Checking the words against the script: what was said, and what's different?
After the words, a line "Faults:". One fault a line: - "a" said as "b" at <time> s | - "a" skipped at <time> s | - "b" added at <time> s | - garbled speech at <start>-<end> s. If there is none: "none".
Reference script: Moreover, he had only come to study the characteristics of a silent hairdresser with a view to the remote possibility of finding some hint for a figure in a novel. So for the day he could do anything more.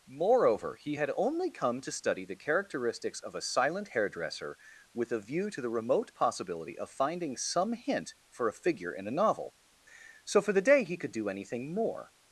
Moreover, he had only come to study the characteristics of a silent hairdresser with a view to the remote possibility of finding some hint for a figure in a novel. So for the day he could do anything more.
Faults:
none